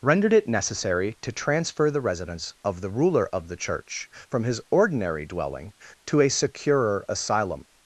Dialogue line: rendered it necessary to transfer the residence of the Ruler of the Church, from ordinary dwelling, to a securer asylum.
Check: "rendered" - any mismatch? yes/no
no